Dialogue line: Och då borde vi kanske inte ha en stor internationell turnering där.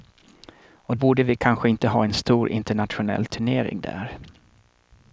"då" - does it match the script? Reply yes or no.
no